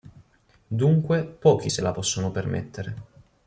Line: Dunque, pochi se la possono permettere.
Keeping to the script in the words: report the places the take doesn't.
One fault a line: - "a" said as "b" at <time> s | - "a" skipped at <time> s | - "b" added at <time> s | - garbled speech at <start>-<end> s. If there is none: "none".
none